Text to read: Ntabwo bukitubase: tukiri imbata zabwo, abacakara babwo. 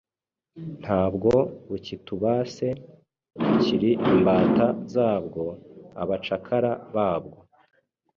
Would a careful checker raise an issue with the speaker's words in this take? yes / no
no